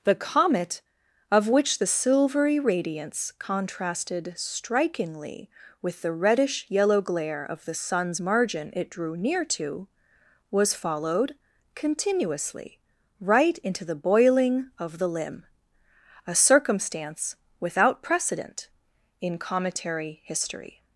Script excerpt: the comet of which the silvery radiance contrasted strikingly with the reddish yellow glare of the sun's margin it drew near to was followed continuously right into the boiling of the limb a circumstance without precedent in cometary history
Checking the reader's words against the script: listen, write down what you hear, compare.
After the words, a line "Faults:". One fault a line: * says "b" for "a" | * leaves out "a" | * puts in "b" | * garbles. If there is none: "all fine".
the comet of which the silvery radiance contrasted strikingly with the reddish yellow glare of the sun's margin it drew near to was followed continuously right into the boiling of the limb a circumstance without precedent in cometary history
Faults:
all fine